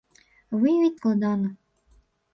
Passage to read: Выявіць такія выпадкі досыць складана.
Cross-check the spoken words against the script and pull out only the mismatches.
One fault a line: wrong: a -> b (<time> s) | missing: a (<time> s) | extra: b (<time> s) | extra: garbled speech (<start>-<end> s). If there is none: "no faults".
missing: такія выпадкі досыць (1.0 s)